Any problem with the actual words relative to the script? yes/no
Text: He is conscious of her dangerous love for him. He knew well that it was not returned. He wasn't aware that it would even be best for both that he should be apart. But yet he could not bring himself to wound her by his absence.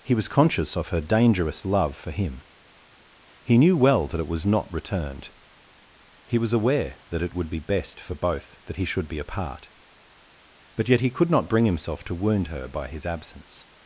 yes